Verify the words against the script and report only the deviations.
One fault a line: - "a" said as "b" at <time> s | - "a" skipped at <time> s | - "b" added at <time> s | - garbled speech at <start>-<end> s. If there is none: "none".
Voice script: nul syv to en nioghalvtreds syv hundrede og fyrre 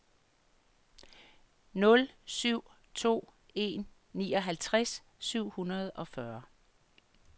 none